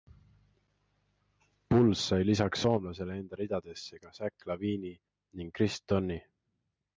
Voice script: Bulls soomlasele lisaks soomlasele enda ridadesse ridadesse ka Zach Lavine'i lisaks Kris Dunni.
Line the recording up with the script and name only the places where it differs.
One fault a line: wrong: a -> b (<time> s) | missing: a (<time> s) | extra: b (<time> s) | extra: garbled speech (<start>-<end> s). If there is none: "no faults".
wrong: soomlasele -> sai (2.1 s)
missing: ridadesse (4.0 s)
wrong: lisaks -> ning (5.4 s)